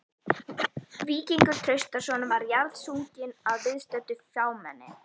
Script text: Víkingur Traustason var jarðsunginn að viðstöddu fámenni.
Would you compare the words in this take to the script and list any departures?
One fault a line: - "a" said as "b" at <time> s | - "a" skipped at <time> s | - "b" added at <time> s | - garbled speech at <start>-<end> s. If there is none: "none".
none